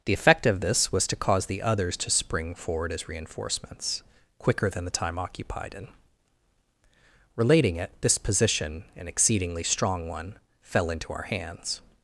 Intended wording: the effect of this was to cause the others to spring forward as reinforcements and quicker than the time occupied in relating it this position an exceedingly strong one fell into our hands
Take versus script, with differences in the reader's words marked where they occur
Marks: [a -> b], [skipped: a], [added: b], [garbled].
the effect of this was to cause the others to spring forward as reinforcements [skipped: and] quicker than the time occupied in relating it this position an exceedingly strong one fell into our hands